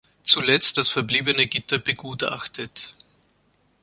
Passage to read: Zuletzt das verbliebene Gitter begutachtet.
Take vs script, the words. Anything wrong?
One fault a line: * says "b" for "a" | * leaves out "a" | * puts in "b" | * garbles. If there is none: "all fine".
all fine